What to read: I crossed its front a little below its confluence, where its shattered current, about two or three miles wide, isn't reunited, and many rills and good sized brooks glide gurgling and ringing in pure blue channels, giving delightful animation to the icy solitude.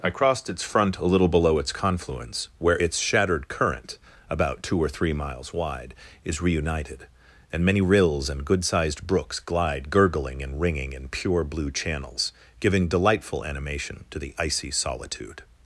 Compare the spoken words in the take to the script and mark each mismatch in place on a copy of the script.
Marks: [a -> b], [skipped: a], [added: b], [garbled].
I crossed its front a little below its confluence, where its shattered current, about two or three miles wide, [isn't -> is] reunited, and many rills and good sized brooks glide gurgling and ringing in pure blue channels, giving delightful animation to the icy solitude.